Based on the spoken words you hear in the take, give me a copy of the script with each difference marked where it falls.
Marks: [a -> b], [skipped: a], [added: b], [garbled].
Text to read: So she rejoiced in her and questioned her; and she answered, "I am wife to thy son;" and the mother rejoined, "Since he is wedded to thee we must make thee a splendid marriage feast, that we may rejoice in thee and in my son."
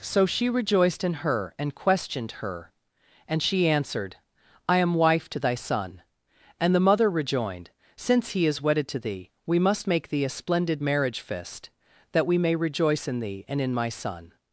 So she rejoiced in her and questioned her; and she answered, "I am wife to thy son;" and the mother rejoined, "Since he is wedded to thee we must make thee a splendid marriage [feast, -> fist] that we may rejoice in thee and in my son."